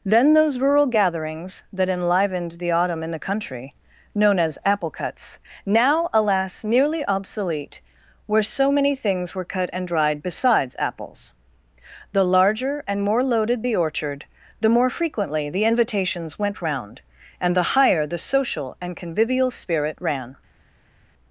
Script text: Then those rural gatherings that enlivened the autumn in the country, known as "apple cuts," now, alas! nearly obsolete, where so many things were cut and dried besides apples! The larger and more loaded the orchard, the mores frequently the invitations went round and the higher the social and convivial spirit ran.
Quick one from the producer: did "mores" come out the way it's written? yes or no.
no